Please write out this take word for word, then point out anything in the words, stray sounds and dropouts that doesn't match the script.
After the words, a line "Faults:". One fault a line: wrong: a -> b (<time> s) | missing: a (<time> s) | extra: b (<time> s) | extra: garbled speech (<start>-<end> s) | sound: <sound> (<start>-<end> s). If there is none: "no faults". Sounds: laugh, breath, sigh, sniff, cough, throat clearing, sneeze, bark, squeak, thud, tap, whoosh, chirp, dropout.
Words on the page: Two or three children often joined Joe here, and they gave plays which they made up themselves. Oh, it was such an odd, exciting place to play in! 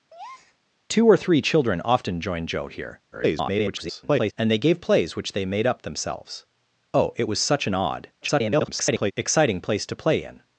Two or three children often joined Joe here, [garbled] and they gave plays which they made up themselves. Oh, it was such an odd, [garbled] exciting place to play in!
Faults:
sound: breath (0.1-0.6 s)
extra: garbled speech (3.1-4.3 s)
extra: garbled speech (8.2-9.1 s)